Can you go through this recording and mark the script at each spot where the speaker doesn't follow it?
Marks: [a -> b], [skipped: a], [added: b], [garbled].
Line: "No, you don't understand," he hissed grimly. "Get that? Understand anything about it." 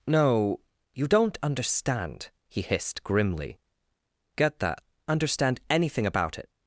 "No, you don't understand," he hissed grimly. "Get that? Understand anything about it."